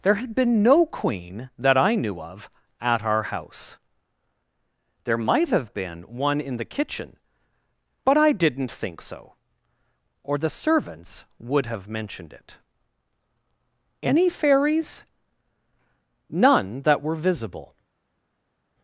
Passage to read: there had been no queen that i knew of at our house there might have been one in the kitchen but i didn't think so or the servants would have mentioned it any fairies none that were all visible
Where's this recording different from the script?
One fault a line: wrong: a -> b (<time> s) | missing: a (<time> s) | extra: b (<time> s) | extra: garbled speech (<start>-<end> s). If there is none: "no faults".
missing: all (17.1 s)